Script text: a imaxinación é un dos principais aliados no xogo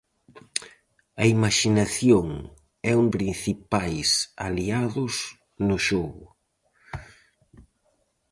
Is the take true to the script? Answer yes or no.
no